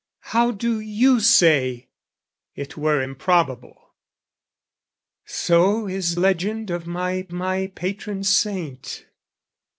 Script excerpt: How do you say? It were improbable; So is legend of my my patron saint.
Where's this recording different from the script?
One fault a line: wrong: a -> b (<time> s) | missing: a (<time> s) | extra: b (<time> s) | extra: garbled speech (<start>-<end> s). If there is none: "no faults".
no faults